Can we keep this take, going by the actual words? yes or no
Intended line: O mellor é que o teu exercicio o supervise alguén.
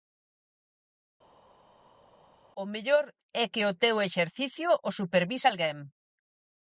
yes